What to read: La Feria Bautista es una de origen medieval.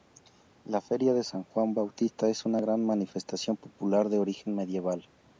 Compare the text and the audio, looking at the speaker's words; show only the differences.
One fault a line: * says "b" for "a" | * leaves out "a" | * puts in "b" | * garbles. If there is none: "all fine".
* puts in "de San Juan"
* puts in "gran manifestación popular"